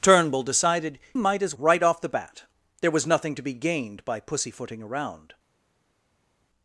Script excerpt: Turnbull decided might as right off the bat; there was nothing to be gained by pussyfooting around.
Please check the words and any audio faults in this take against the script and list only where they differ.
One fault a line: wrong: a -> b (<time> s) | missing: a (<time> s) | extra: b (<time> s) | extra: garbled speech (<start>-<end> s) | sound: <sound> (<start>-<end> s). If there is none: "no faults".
no faults